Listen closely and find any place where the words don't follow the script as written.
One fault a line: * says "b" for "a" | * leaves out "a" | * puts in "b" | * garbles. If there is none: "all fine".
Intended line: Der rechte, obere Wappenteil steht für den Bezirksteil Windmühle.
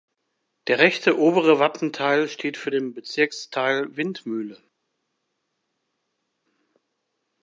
all fine